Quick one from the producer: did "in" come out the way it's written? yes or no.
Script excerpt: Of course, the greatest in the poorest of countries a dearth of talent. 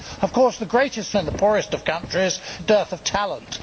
yes